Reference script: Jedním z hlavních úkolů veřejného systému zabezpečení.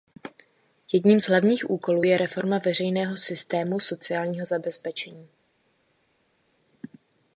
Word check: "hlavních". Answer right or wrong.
right